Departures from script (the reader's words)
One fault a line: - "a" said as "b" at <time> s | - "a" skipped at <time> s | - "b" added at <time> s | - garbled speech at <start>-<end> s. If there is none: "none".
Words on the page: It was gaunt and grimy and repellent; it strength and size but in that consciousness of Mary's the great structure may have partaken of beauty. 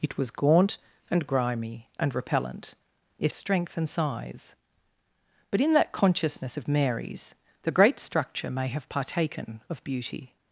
none